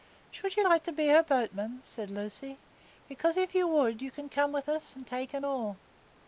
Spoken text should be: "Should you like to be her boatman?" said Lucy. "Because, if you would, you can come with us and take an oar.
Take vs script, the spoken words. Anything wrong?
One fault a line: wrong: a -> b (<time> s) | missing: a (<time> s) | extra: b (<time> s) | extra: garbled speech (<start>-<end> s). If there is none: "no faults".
no faults